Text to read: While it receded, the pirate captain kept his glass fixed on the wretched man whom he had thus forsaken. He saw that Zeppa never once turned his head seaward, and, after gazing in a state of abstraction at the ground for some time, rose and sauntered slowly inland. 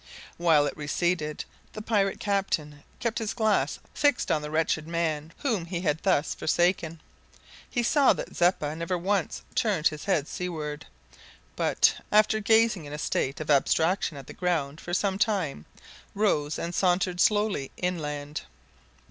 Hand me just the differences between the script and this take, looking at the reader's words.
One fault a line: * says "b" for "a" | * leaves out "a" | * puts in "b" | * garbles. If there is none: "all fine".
* says "but" for "and"